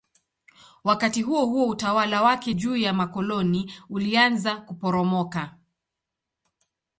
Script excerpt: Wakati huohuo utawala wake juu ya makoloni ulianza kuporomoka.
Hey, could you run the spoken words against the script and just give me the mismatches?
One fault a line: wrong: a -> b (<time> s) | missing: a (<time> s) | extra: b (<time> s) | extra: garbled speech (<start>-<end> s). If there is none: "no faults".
no faults